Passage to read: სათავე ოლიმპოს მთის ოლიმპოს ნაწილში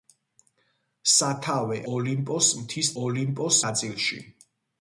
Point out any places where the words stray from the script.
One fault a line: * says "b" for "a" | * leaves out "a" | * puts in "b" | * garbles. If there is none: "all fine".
all fine